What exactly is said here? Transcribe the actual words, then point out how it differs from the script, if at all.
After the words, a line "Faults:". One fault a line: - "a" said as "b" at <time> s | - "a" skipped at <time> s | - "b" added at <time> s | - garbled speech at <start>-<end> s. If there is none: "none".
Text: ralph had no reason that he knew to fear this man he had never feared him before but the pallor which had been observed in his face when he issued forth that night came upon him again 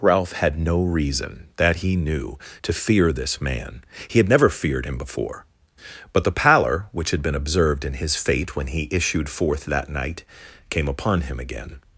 ralph had no reason that he knew to fear this man he had never feared him before but the pallor which had been observed in his fate when he issued forth that night came upon him again
Faults:
- "face" said as "fate" at 8.1 s